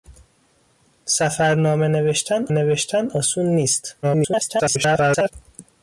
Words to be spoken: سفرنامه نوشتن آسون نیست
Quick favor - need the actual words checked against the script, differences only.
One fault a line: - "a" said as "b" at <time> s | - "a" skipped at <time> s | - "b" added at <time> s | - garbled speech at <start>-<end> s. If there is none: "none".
- "نوشتن" added at 2.5 s
- garbled speech at 4.0-5.3 s